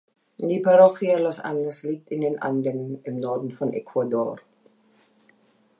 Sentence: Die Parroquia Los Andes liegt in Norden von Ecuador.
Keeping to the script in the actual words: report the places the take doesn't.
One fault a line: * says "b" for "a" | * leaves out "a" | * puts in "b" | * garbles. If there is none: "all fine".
* puts in "den Anden im"